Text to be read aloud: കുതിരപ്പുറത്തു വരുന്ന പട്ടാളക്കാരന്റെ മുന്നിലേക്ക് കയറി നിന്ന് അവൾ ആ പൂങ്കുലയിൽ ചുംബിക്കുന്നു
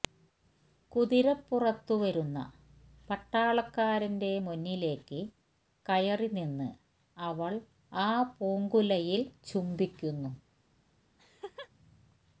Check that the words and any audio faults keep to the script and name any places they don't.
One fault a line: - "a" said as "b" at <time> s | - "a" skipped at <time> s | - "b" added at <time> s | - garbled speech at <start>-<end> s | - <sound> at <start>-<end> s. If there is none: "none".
- laugh at 11.2-11.7 s